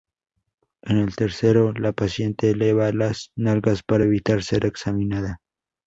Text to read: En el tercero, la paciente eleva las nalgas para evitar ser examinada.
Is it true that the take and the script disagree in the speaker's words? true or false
false